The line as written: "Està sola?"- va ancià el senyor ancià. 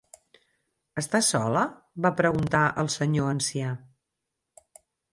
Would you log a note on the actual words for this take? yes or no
yes